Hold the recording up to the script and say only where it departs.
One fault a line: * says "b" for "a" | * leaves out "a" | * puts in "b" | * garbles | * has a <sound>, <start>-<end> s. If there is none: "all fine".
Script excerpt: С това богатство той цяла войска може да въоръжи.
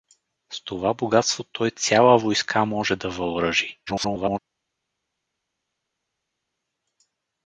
* garbles